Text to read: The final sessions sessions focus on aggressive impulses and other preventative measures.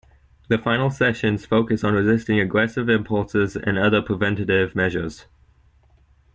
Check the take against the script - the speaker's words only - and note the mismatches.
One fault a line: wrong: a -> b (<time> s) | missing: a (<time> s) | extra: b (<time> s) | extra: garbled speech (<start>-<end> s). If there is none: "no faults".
missing: sessions (1.4 s)
extra: resisting (1.9 s)